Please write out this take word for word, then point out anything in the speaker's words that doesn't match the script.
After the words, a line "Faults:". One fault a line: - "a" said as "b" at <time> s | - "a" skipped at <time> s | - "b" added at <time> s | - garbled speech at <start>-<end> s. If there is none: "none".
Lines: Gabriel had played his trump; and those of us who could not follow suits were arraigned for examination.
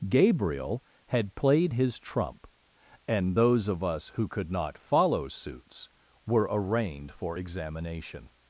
Gabriel had played his trump; and those of us who could not follow suits were arraigned for examination.
Faults:
none